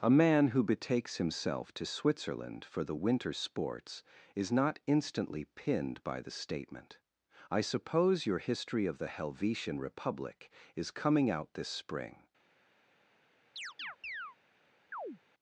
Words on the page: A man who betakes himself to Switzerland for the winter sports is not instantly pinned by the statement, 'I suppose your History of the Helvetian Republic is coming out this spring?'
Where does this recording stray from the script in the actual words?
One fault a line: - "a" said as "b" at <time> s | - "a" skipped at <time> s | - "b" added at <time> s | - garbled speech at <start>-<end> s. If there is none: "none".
none